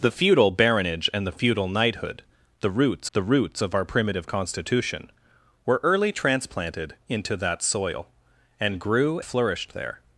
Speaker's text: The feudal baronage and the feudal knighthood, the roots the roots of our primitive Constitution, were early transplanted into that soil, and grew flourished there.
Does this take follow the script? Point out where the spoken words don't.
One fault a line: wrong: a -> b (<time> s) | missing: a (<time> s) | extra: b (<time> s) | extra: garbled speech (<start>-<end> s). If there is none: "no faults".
no faults